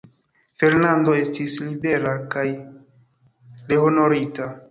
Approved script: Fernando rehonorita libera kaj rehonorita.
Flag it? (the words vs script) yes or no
yes